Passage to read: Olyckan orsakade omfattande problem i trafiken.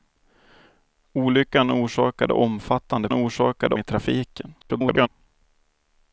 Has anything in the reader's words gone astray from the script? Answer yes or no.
yes